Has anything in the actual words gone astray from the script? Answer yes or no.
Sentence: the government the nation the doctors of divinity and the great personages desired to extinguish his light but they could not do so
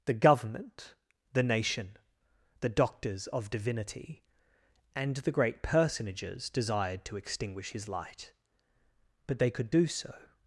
yes